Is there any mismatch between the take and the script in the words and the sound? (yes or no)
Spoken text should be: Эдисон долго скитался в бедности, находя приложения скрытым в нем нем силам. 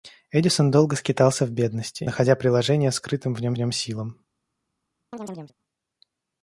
yes